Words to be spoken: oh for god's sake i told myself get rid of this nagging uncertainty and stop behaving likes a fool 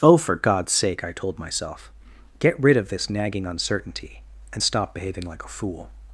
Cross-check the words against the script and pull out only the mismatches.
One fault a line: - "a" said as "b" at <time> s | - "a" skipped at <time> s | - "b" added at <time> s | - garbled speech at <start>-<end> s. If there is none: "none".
- "likes" said as "like" at 5.2 s